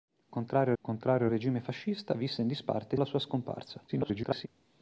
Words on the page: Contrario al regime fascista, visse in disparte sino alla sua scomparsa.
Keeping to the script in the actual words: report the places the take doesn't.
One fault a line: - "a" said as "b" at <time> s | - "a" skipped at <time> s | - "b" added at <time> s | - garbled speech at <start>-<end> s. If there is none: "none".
- "contrario" added at 0.8 s
- "sino" skipped at 3.0 s
- garbled speech at 3.9-4.5 s